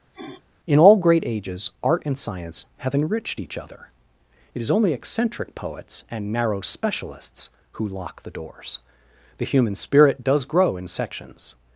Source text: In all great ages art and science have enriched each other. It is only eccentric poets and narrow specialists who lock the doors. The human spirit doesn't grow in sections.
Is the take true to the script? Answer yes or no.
no